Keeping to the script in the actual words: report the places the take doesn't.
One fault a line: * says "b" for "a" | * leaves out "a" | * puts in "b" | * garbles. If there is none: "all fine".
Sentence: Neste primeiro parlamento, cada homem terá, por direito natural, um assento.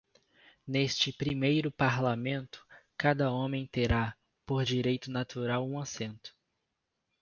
all fine